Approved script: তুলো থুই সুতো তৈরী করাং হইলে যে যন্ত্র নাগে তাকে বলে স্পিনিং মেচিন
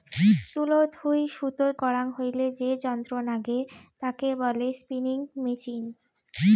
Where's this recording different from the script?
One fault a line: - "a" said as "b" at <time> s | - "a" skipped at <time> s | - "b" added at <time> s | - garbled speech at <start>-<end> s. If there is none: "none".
- "তৈরী" skipped at 1.6 s